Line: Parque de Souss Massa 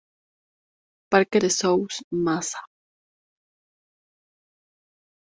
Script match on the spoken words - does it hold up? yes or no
yes